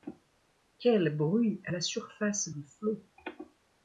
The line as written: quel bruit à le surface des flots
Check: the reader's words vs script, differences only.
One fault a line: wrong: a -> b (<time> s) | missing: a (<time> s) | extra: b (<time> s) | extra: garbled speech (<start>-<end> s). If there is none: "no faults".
wrong: le -> la (1.7 s)